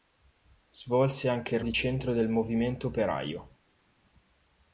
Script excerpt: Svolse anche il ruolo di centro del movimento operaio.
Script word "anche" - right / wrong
right